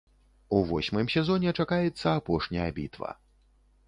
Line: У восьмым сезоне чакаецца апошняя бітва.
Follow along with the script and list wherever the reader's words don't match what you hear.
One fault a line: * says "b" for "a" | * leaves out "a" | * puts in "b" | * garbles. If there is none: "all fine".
all fine